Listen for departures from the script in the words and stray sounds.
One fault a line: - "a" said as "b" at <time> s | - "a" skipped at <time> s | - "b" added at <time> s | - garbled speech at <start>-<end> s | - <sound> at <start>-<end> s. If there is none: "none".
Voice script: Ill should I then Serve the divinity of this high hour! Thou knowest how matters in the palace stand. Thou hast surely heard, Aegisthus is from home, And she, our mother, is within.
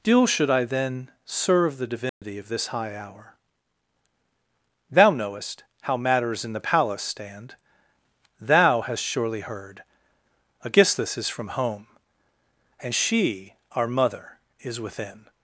- "Ill" said as "Still" at 0.0 s
- dropout at 2.1-2.2 s